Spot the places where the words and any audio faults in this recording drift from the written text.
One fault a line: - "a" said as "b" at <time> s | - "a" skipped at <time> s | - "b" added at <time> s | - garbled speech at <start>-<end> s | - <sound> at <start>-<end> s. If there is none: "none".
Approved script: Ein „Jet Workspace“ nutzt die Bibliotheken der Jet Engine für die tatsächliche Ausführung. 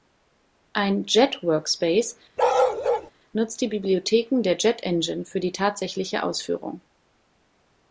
- bark at 2.4-3.1 s